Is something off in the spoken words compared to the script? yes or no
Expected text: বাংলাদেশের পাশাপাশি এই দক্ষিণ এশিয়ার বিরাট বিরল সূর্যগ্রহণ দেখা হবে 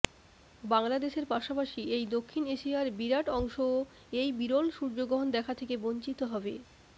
yes